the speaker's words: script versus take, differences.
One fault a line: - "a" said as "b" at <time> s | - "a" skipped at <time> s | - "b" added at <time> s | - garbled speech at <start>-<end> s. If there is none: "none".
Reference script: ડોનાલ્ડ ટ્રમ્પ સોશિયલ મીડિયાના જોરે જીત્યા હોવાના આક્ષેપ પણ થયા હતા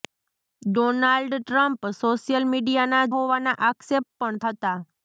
- "જોરે જીત્યા" skipped at 3.0 s
- "થયા" skipped at 4.4 s